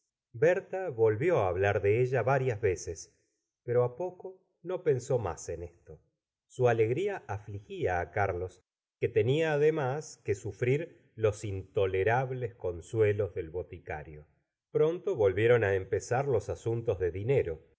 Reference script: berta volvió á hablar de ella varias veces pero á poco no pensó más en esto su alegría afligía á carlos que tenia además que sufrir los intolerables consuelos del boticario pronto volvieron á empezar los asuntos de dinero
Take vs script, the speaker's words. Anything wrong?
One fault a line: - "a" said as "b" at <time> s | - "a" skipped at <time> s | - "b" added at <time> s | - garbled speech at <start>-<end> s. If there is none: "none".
none